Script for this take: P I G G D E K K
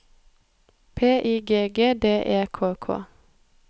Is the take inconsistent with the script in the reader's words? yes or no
no